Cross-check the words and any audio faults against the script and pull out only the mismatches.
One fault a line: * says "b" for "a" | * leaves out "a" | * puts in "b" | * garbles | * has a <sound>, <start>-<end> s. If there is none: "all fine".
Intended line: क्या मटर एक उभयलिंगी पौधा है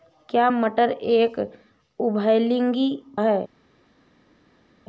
* leaves out "पौधा"